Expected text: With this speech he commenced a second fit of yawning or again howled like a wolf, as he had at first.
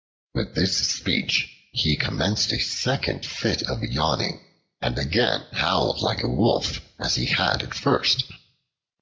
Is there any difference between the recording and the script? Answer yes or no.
yes